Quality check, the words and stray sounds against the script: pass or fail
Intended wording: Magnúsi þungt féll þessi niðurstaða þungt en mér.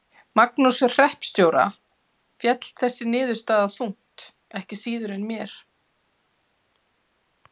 fail